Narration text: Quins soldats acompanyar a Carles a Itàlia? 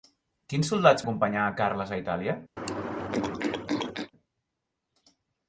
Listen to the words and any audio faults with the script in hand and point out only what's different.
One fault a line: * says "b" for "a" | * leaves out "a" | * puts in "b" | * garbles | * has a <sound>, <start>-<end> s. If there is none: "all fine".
* has a throat clearing, 2.6-4.1 s